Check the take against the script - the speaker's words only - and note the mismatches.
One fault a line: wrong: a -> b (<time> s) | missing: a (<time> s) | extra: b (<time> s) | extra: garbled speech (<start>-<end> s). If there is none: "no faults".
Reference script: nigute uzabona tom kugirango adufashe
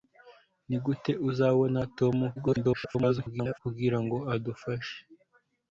extra: garbled speech (2.4-3.6 s)